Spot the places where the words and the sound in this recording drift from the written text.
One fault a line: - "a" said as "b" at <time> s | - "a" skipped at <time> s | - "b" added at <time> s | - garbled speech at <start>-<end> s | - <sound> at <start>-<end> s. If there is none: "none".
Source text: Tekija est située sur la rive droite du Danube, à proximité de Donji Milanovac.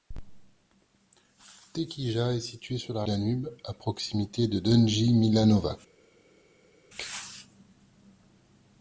- "rive droite du" skipped at 3.0 s